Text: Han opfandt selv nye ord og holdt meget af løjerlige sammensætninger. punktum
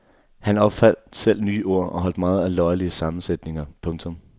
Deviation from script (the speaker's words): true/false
false